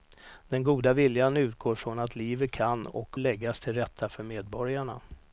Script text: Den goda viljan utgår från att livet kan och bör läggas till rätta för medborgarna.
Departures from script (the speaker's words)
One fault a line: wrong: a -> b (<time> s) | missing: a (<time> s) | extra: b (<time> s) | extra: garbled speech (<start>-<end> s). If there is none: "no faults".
missing: bör (3.2 s)